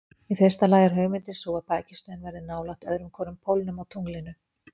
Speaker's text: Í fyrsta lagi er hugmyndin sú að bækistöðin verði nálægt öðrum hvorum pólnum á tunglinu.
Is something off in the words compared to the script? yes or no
no